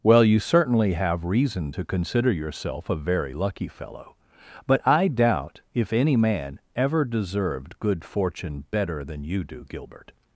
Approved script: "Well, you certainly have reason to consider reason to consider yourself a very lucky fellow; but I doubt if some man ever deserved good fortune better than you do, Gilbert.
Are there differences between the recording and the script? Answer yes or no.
yes